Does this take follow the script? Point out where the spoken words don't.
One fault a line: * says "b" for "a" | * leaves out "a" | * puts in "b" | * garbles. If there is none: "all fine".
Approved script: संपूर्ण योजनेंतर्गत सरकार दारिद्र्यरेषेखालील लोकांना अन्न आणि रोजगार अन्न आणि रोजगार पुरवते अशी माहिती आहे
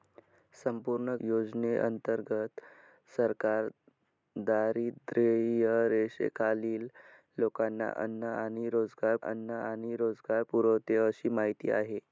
all fine